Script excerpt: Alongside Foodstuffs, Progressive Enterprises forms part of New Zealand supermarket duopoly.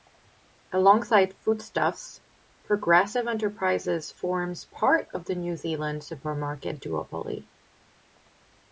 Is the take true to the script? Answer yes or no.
no